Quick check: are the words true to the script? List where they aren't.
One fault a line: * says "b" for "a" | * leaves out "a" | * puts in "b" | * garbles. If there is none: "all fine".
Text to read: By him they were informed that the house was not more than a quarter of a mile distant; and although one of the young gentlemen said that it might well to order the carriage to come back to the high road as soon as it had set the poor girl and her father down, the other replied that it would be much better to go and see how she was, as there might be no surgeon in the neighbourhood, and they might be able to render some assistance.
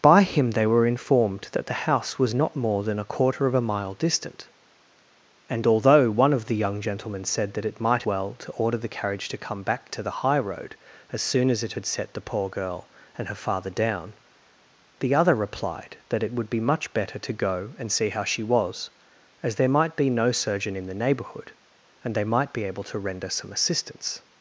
all fine